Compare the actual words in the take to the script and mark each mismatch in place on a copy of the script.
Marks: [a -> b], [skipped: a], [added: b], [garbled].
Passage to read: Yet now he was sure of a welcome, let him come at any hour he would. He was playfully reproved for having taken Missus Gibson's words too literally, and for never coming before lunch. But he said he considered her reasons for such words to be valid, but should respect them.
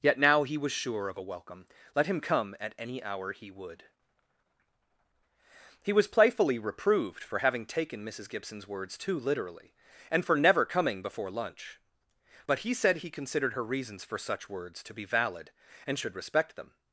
Yet now he was sure of a welcome, let him come at any hour he would. He was playfully reproved for having taken Missus Gibson's words too literally, and for never coming before lunch. But he said he considered her reasons for such words to be valid, [but -> and] should respect them.